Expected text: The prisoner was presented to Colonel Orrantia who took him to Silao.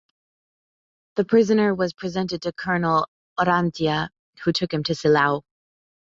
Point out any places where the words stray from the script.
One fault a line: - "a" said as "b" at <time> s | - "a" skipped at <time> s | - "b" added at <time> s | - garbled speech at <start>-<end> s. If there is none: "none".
none